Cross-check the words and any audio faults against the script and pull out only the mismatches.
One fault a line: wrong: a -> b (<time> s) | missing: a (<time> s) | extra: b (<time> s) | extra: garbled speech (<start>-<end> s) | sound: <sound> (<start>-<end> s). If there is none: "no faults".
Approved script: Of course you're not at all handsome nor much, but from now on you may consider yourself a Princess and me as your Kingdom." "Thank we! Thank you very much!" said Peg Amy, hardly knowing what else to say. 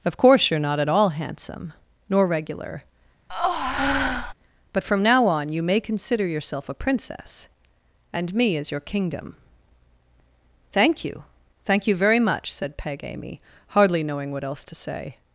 wrong: much -> regular (2.3 s)
sound: breath (3.3-4.3 s)
wrong: we -> you (11.0 s)